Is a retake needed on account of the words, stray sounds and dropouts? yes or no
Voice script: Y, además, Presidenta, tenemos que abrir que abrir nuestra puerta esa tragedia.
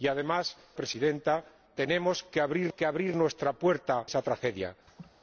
yes